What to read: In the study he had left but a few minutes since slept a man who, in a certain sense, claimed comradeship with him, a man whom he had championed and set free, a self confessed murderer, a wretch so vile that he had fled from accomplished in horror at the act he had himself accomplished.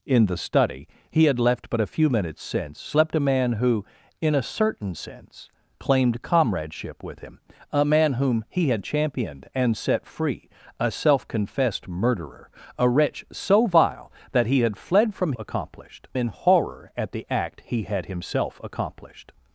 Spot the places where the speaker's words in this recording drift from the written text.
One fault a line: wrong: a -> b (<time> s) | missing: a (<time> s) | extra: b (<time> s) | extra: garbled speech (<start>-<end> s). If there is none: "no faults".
no faults